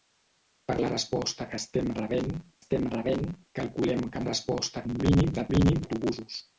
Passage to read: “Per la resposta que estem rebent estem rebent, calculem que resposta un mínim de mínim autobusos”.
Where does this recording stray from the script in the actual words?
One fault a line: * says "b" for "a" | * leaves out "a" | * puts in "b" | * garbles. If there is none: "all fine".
all fine